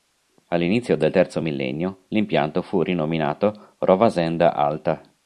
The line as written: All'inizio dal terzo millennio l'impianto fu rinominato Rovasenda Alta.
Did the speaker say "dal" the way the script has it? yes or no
no